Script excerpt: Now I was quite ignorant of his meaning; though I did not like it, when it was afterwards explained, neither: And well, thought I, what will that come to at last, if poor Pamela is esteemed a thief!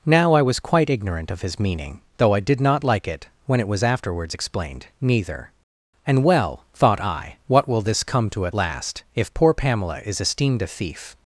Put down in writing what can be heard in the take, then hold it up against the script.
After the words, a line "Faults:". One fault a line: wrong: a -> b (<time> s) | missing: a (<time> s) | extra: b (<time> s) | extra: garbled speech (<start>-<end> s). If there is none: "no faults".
Now I was quite ignorant of his meaning; though I did not like it, when it was afterwards explained, neither: And well, thought I, what will this come to at last, if poor Pamela is esteemed a thief!
Faults:
wrong: that -> this (7.8 s)